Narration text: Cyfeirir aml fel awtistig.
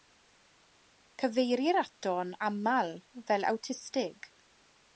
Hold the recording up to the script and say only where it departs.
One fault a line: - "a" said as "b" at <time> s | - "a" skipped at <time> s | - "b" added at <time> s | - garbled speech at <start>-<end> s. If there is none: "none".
- "ato'n" added at 1.8 s